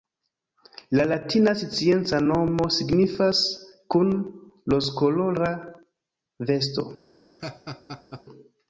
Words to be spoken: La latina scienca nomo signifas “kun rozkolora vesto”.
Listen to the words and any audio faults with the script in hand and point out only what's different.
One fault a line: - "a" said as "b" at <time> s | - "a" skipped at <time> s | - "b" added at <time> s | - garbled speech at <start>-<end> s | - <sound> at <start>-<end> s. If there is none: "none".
- laugh at 7.4-8.2 s